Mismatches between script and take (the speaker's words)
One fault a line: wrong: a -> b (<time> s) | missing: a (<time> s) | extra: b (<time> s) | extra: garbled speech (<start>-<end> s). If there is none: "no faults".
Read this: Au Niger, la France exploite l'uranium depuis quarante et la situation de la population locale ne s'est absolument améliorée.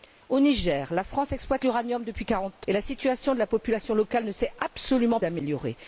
no faults